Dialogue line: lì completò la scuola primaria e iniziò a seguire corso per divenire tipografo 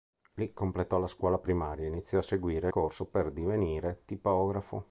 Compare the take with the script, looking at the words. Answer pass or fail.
pass